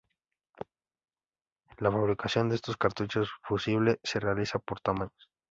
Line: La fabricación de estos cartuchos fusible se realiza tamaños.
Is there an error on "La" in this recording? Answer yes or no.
no